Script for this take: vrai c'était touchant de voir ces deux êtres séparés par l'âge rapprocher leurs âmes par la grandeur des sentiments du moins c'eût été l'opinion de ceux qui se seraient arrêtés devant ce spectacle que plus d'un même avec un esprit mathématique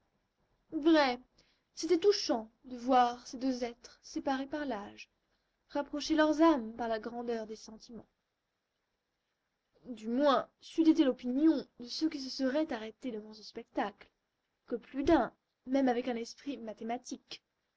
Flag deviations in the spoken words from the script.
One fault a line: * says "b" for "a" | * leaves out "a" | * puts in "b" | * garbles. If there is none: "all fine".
all fine